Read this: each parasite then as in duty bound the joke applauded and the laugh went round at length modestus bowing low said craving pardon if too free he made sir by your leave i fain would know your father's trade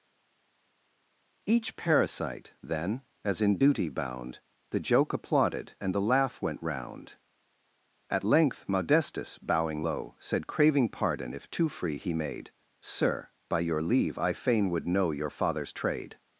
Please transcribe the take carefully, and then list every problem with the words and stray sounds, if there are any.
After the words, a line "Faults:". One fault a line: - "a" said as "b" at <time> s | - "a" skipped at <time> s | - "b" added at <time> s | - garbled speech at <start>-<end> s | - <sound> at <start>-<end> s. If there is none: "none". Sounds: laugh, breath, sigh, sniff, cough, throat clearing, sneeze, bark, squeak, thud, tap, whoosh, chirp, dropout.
each parasite then as in duty bound the joke applauded and the laugh went round at length modestus bowing low said craving pardon if too free he made sir by your leave i fain would know your father's trade
Faults:
none